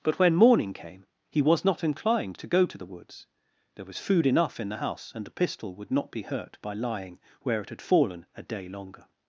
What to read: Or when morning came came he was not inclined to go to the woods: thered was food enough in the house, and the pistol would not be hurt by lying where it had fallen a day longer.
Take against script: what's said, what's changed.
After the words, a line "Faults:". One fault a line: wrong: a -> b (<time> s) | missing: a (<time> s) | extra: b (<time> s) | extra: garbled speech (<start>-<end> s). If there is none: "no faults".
But when morning came he was not inclined to go to the woods: there was food enough in the house, and the pistol would not be hurt by lying where it had fallen a day longer.
Faults:
wrong: Or -> But (0.0 s)
missing: came (1.1 s)
wrong: thered -> there (3.8 s)